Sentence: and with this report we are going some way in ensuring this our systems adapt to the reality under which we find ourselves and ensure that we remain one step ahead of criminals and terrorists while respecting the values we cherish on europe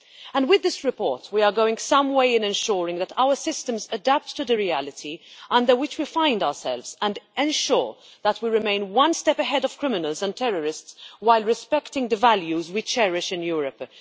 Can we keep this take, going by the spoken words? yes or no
no